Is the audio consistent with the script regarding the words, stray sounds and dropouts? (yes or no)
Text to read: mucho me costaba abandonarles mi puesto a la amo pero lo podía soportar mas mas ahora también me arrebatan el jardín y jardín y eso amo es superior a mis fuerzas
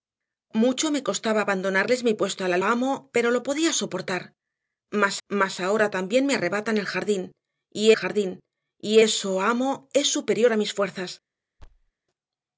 no